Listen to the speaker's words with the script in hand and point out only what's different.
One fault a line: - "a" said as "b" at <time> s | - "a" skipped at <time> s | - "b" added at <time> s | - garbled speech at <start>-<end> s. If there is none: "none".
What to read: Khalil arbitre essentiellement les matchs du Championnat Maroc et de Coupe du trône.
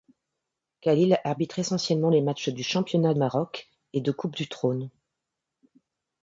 none